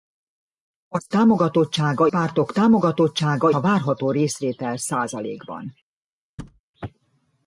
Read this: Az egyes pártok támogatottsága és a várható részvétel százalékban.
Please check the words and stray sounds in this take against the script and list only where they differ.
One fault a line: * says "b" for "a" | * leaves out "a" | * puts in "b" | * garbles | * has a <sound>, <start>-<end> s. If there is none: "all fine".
* says "támogatottsága" for "egyes"
* leaves out "és"
* has a thud, 6.4-6.6 s